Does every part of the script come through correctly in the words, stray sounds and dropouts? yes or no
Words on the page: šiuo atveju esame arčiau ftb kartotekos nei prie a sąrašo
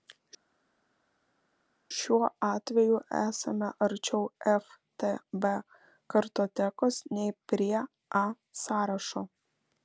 yes